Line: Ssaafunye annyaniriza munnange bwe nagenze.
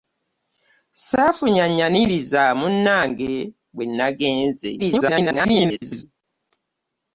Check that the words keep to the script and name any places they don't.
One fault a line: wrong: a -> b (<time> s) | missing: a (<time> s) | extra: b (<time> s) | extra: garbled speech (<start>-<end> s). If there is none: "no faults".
extra: garbled speech (4.8-6.0 s)